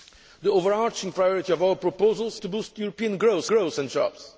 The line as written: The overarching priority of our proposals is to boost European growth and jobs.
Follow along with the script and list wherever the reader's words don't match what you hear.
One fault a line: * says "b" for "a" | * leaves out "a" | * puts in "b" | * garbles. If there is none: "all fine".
* leaves out "is"
* puts in "growth"